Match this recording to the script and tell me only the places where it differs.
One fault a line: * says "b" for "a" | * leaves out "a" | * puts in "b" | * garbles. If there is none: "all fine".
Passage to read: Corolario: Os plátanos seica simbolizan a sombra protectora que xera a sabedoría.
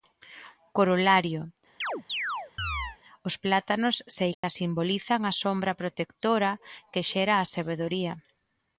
all fine